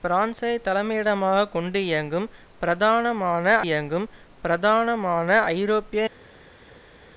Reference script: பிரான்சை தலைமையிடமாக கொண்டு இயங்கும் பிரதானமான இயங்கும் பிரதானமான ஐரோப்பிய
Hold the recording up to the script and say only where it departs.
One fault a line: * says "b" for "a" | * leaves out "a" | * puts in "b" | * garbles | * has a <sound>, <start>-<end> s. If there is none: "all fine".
all fine